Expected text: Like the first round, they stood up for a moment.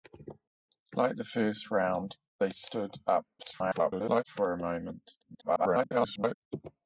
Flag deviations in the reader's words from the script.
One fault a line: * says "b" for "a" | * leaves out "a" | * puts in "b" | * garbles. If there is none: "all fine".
* garbles
* garbles